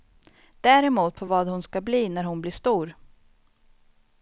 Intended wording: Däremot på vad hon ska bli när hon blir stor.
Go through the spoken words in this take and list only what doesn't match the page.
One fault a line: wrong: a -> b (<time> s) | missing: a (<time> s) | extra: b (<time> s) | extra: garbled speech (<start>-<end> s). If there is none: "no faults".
no faults